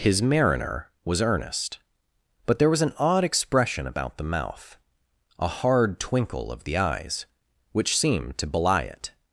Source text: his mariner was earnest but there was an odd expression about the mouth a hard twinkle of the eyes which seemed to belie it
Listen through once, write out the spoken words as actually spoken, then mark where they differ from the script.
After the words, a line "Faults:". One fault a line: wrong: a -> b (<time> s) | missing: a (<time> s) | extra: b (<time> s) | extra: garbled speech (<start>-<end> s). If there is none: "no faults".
his mariner was earnest but there was an odd expression about the mouth a hard twinkle of the eyes which seemed to belie it
Faults:
no faults